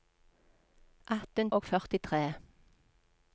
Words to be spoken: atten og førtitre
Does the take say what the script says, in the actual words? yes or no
yes